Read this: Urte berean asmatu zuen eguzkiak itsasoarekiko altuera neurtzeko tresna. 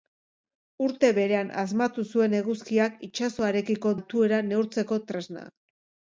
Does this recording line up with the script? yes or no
yes